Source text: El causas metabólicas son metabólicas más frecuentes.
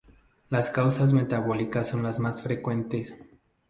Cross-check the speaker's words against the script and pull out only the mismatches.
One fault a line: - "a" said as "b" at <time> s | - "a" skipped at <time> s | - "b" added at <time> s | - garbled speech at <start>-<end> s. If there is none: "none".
- "El" said as "Las" at 0.5 s
- "metabólicas" said as "las" at 2.0 s